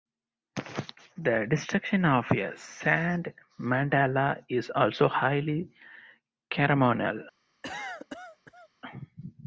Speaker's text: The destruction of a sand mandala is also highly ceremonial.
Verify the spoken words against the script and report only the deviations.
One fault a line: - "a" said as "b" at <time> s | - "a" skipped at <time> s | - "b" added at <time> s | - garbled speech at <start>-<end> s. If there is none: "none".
none